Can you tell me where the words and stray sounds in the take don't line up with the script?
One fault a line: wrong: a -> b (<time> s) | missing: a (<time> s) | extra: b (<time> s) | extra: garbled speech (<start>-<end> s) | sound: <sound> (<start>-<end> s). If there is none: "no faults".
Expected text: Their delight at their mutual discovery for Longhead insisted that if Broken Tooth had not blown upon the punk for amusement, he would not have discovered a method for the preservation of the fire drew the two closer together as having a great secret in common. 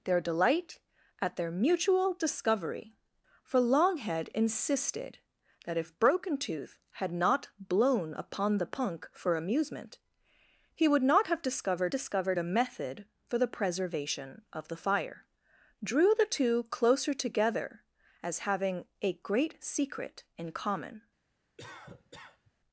extra: discovered (11.9 s)
sound: cough (21.6-22.5 s)